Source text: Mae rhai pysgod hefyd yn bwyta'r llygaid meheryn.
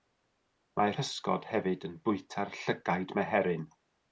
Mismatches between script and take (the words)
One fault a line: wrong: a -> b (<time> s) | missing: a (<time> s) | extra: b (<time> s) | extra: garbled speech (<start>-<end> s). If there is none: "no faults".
missing: rhai (0.9 s)